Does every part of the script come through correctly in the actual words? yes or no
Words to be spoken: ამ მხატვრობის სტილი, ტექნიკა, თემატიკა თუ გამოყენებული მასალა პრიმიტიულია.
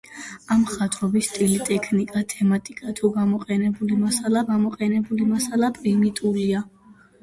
no